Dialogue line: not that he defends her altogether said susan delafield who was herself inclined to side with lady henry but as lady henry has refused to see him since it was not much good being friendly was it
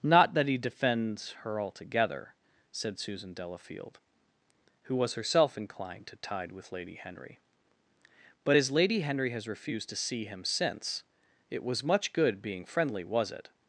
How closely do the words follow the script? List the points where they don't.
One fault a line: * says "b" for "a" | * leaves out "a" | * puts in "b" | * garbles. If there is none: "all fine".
* says "tide" for "side"
* leaves out "not"